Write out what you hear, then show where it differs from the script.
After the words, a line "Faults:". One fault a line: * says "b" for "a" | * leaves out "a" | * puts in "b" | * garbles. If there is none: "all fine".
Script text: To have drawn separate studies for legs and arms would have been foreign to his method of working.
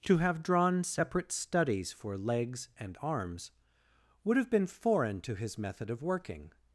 To have drawn separate studies for legs and arms would have been foreign to his method of working.
Faults:
all fine